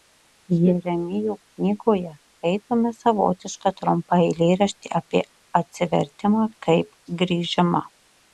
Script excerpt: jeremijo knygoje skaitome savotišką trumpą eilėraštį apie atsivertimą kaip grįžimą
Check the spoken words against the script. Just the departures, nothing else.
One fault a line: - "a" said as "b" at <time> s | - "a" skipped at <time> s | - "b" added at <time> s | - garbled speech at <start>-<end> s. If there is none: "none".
none